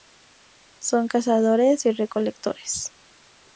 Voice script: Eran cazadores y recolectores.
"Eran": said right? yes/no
no